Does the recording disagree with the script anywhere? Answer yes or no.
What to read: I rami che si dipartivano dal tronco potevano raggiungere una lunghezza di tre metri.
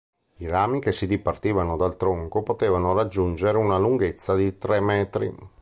no